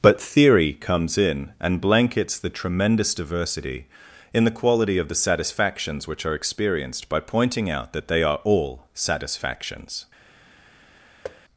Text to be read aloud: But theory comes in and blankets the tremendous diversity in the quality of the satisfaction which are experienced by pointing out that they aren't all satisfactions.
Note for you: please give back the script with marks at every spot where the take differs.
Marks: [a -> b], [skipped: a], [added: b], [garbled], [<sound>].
But theory comes in and blankets the tremendous diversity in the quality of the [satisfaction -> satisfactions] which are experienced by pointing out that they [aren't -> are] all satisfactions. [thud]